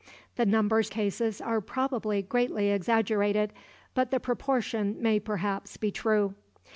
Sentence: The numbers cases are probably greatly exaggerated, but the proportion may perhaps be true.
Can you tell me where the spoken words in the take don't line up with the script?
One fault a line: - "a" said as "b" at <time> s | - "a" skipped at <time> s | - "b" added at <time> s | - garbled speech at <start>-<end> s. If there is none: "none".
none